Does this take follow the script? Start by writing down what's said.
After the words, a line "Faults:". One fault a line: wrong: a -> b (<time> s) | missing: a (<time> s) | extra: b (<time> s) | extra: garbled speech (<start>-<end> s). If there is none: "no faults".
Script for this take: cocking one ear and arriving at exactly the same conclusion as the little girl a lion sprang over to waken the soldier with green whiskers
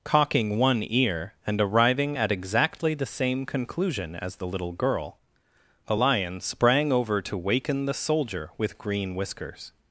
cocking one ear and arriving at exactly the same conclusion as the little girl a lion sprang over to waken the soldier with green whiskers
Faults:
no faults